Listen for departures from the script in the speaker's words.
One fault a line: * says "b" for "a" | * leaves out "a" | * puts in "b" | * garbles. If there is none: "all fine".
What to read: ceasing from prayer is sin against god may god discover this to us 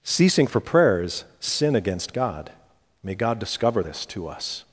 * says "for" for "from"